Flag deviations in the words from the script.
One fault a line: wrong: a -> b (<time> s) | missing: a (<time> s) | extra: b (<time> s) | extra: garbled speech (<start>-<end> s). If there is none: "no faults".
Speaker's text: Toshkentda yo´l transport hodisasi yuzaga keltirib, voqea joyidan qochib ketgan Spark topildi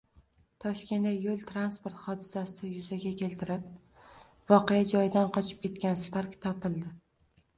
no faults